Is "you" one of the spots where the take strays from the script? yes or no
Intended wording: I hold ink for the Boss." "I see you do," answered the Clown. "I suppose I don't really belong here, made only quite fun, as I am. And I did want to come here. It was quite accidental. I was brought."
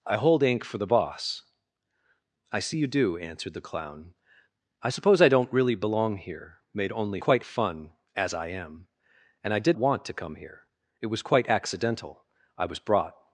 no